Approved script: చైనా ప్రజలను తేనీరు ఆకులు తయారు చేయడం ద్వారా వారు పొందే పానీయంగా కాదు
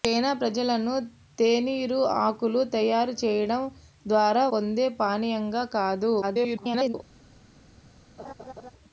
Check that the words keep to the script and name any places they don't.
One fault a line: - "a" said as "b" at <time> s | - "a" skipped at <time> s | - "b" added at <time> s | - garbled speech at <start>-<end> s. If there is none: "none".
- "వారు" skipped at 4.5 s
- garbled speech at 6.2-6.9 s